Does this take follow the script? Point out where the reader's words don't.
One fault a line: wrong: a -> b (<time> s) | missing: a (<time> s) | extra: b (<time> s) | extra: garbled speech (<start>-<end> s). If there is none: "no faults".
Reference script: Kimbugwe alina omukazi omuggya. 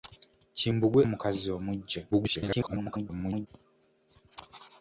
missing: alina (1.0 s)
extra: garbled speech (2.1-3.5 s)